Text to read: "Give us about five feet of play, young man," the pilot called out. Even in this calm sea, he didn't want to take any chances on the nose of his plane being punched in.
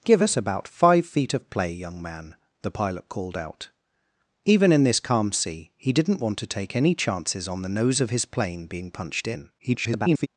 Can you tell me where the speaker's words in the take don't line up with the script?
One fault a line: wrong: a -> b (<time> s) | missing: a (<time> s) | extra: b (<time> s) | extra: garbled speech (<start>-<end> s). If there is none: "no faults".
extra: garbled speech (9.6-10.3 s)